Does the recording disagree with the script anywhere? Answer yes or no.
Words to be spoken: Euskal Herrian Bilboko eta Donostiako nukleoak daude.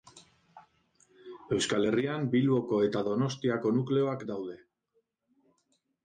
no